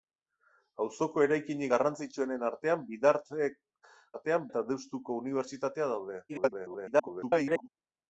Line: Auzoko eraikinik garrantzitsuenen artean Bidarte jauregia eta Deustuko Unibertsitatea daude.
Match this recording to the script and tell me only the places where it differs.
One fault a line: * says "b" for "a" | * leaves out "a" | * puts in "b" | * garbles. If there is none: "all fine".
* says "artean" for "jauregia"
* garbles